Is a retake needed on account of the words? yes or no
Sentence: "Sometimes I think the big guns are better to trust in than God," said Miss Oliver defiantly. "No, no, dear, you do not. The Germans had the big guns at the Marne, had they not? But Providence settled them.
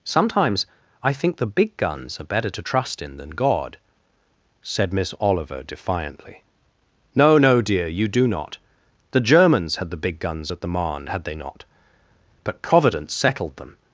no